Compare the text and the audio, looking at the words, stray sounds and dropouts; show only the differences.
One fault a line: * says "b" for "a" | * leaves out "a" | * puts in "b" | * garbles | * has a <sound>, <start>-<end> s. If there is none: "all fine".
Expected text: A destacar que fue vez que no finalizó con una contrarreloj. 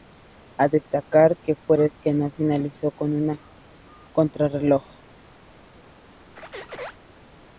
* has a squeak, 6.4-7.0 s